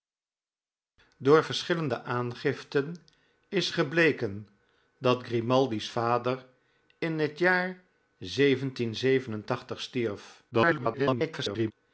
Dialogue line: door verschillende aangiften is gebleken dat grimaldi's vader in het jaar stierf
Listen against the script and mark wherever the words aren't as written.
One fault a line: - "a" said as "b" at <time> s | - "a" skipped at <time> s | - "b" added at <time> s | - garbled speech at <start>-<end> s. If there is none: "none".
- garbled speech at 10.5-11.7 s